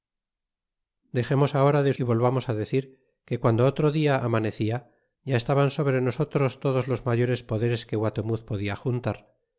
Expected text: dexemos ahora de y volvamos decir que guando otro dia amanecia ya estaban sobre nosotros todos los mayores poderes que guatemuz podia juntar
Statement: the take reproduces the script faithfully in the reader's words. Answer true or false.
true